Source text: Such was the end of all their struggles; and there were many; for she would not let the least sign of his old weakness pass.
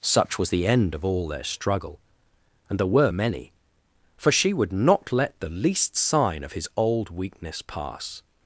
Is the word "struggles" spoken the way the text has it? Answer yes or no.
no